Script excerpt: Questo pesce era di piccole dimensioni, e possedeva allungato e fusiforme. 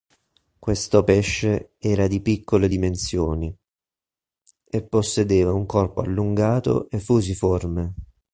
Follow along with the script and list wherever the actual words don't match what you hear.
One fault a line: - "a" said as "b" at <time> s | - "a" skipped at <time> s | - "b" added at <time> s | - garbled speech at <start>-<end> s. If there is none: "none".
- "un corpo" added at 5.5 s